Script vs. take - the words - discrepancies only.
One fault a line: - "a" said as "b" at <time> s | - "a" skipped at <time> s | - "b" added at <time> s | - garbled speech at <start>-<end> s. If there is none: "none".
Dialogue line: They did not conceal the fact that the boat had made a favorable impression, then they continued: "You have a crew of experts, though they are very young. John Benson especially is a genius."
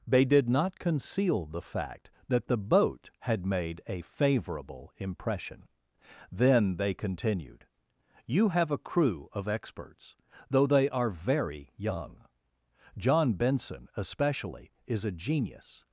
none